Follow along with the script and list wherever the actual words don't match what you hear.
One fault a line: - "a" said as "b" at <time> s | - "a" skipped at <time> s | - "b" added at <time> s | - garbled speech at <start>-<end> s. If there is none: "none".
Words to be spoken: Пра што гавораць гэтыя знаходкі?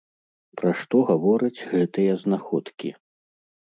none